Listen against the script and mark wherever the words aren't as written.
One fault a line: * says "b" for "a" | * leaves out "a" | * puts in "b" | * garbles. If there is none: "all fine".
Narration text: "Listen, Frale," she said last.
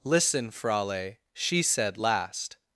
all fine